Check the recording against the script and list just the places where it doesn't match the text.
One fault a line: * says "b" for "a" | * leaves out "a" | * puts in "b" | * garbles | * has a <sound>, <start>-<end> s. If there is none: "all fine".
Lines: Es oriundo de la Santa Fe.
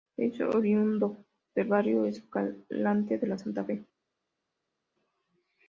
* puts in "del Barrio Escalante"